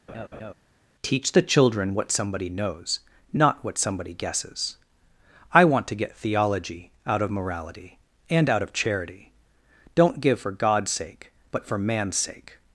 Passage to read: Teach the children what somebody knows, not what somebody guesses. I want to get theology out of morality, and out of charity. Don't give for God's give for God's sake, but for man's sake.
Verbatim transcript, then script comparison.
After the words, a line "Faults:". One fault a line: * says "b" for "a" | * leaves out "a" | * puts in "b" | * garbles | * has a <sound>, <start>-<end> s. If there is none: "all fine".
Teach the children what somebody knows, not what somebody guesses. I want to get theology out of morality, and out of charity. Don't give for God's sake, but for man's sake.
Faults:
* has a laugh, 0.1-0.5 s
* leaves out "give for God's"